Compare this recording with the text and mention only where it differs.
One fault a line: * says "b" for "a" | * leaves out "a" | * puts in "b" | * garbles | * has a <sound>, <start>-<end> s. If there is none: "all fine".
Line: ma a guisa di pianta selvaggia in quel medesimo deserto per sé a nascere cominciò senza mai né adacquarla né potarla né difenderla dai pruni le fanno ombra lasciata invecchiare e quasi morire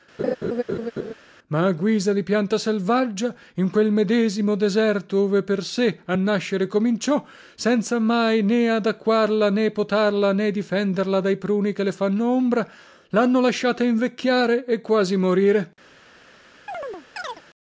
* has a laugh, 0.2-1.1 s
* puts in "ove"
* puts in "che"
* puts in "lhanno"
* has a chirp, 16.7-17.4 s